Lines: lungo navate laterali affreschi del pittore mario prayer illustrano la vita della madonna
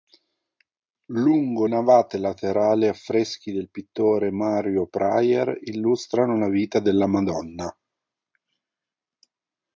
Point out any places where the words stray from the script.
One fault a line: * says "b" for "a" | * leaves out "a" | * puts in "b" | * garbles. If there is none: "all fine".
all fine